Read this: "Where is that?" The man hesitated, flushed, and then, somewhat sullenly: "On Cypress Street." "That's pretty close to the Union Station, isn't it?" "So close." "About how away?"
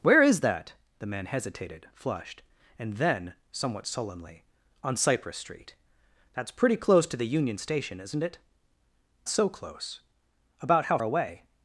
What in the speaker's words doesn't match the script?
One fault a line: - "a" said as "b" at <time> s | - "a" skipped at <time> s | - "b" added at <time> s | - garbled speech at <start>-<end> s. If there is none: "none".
none